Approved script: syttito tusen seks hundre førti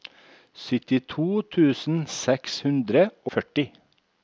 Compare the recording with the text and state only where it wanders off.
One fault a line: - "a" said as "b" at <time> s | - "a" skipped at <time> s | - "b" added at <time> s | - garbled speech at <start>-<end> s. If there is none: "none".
none